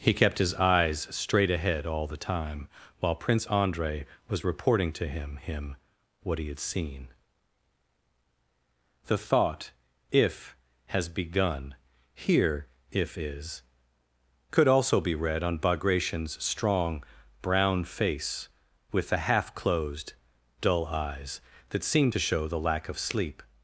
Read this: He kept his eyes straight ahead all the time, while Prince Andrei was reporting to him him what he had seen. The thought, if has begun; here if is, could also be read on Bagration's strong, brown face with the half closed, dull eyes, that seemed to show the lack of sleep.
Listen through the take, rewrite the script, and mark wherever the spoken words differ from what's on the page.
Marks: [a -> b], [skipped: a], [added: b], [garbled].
He kept his eyes straight ahead all the time, while Prince Andrei was reporting to him him what he had seen. The thought, if has begun; here if is, could also be read on Bagration's strong, brown face with the half closed, dull eyes, that seemed to show the lack of sleep.